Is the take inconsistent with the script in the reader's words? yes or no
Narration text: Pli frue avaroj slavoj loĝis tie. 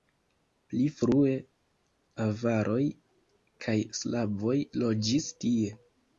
yes